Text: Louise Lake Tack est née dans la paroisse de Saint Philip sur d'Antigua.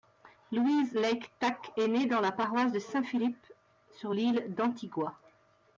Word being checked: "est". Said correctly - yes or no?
yes